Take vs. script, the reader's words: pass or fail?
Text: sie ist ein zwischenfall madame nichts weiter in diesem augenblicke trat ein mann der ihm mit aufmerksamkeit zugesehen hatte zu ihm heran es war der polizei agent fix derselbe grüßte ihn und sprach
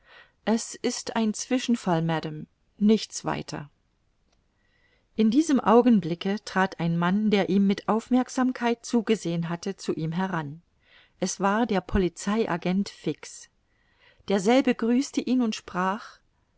fail